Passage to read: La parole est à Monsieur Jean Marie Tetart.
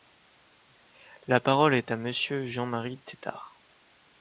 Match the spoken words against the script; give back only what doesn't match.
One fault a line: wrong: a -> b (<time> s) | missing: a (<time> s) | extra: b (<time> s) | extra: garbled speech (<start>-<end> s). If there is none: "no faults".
no faults